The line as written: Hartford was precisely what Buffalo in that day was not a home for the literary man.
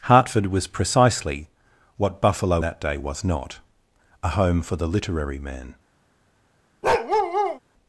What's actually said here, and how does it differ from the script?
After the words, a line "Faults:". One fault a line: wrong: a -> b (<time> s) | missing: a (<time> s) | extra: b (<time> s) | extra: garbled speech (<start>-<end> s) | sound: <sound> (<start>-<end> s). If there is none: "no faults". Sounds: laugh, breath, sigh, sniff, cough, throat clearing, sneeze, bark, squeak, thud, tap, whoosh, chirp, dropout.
Hartford was precisely what Buffalo that day was not a home for the literary man.
Faults:
missing: in (2.6 s)
sound: bark (6.8-7.6 s)